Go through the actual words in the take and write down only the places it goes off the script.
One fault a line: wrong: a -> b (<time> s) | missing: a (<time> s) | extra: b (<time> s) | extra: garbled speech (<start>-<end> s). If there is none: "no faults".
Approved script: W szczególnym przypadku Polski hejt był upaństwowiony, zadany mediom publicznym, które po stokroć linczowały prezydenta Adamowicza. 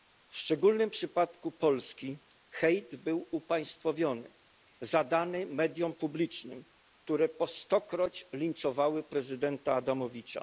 no faults